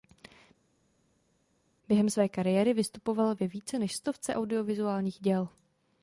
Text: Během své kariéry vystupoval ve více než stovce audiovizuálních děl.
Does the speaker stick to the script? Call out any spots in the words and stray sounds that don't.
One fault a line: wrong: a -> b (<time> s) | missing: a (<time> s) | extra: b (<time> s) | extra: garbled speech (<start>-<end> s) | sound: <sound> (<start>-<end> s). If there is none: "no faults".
no faults